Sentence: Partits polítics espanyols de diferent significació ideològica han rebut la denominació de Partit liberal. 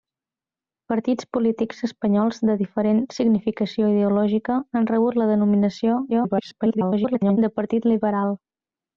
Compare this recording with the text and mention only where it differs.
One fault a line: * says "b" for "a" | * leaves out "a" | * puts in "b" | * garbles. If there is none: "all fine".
* garbles